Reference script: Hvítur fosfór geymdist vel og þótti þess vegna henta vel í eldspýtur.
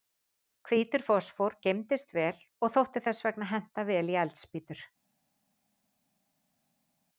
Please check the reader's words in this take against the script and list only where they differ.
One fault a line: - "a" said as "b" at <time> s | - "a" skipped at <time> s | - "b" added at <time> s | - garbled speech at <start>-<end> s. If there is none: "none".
none